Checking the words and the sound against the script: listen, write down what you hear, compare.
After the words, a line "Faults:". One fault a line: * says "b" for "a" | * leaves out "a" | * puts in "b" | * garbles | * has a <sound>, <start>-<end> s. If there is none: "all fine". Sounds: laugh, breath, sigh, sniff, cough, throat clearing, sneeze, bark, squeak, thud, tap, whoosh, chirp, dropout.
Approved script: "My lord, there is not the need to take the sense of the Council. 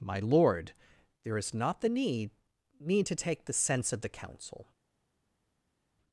"My lord, there is not the need need to take the sense of the Council.
Faults:
* puts in "need"